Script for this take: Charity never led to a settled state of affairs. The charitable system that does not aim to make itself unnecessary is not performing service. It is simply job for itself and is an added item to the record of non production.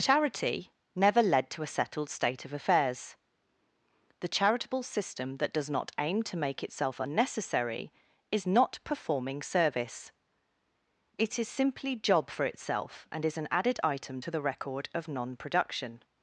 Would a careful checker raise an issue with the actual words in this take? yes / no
no